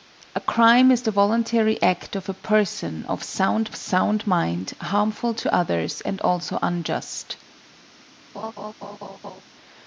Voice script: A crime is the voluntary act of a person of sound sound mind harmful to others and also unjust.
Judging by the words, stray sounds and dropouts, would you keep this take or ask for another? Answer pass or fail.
fail